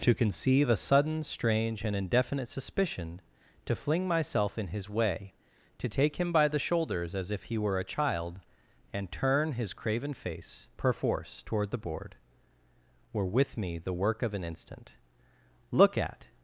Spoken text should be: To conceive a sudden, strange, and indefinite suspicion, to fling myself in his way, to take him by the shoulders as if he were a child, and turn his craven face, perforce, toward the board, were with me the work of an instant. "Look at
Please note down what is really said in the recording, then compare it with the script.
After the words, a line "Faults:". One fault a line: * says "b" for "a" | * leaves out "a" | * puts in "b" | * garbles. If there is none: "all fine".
To conceive a sudden, strange, and indefinite suspicion, to fling myself in his way, to take him by the shoulders as if he were a child, and turn his craven face, perforce, toward the board, were with me the work of an instant. "Look at
Faults:
all fine